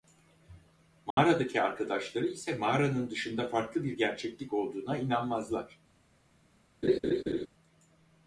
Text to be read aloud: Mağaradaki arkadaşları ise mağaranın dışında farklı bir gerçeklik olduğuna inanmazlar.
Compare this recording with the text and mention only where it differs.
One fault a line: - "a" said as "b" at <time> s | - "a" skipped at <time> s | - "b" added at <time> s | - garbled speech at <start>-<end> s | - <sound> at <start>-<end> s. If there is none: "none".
- dropout at 1.1-1.2 s
- laugh at 6.8-7.5 s